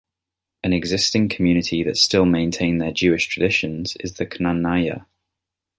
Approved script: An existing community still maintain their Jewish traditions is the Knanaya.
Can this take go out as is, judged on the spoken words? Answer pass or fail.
fail